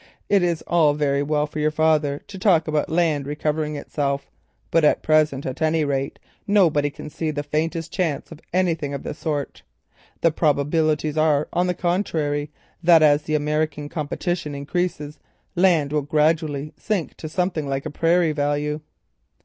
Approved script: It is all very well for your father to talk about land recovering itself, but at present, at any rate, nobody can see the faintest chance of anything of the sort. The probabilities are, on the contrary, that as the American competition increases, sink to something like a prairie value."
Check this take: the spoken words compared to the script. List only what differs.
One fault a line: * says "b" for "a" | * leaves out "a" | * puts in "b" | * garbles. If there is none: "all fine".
* puts in "land will gradually"